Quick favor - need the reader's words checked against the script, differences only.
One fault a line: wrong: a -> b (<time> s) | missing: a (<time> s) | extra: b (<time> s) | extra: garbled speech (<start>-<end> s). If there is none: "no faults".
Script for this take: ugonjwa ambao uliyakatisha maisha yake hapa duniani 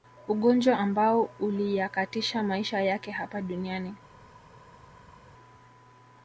no faults